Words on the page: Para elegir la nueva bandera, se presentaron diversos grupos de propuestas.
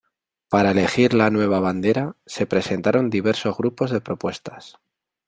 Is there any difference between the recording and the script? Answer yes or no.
no